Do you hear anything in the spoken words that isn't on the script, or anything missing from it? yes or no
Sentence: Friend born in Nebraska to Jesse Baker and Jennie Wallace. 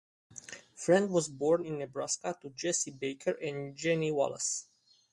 yes